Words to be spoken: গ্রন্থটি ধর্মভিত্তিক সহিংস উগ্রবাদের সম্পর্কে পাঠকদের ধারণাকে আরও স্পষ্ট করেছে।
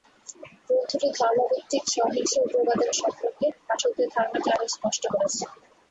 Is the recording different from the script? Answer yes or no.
no